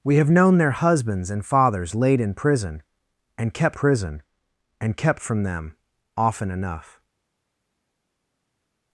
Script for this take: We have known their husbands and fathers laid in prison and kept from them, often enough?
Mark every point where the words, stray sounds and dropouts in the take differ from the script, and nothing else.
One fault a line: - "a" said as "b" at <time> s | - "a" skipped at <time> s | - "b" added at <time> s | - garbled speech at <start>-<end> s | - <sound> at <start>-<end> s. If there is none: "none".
- "prison and kept" added at 3.7 s